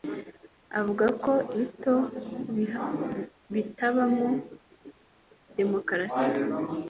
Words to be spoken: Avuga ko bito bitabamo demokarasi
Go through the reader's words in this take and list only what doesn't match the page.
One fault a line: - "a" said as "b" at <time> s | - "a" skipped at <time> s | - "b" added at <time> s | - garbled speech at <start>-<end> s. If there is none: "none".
none